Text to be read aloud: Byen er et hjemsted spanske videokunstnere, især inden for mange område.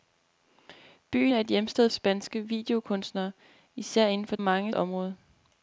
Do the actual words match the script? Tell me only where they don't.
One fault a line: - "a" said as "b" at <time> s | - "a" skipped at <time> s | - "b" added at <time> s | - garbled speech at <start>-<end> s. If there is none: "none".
none